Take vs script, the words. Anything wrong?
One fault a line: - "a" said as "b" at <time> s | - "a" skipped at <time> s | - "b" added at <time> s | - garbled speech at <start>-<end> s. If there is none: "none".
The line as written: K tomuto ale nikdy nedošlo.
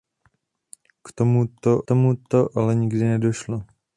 - "tomuto" added at 1.8 s